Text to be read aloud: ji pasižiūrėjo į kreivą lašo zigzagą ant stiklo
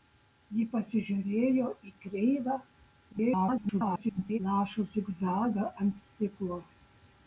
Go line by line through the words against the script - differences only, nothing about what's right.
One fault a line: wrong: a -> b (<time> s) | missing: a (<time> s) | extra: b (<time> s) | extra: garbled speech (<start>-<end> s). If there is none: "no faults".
extra: garbled speech (3.1-4.4 s)